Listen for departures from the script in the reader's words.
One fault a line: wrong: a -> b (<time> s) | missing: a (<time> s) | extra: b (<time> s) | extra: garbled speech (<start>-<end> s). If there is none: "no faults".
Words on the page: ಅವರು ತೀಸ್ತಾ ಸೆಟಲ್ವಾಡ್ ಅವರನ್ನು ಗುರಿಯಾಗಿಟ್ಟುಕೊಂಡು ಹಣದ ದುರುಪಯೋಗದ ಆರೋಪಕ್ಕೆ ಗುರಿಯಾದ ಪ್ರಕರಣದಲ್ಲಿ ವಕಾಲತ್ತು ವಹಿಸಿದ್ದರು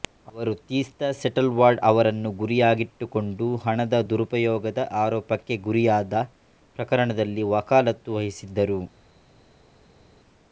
no faults